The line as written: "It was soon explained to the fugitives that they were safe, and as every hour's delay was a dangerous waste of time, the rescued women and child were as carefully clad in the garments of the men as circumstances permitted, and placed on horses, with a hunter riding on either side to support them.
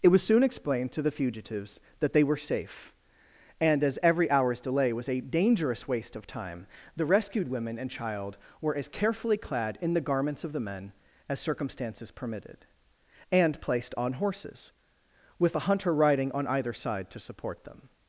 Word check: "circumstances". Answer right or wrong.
right